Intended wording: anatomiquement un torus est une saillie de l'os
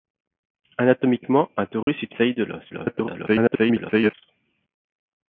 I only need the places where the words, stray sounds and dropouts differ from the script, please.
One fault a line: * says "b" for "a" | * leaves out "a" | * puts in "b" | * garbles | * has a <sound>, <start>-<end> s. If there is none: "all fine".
* has a dropout, 1.8-1.9 s
* leaves out "une"
* garbles